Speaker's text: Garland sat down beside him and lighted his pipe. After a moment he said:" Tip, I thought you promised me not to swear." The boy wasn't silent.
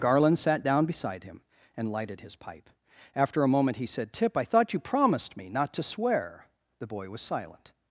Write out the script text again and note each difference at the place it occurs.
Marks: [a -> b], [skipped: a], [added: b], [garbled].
Garland sat down beside him and lighted his pipe. After a moment he said:" Tip, I thought you promised me not to swear." The boy [wasn't -> was] silent.